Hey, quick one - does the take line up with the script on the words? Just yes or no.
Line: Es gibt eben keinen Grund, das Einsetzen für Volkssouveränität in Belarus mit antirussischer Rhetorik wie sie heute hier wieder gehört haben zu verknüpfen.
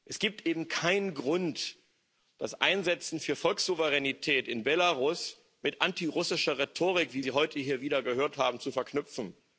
yes